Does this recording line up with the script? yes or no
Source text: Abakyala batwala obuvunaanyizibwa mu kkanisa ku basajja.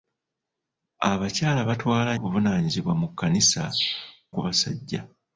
yes